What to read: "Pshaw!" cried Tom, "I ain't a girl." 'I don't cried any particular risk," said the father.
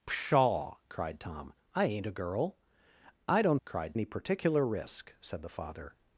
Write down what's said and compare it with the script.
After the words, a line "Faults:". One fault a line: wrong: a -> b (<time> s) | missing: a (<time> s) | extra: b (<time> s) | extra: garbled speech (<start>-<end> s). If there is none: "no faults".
"Pshaw!" cried Tom, "I ain't a girl." 'I don't cried any particular risk," said the father.
Faults:
no faults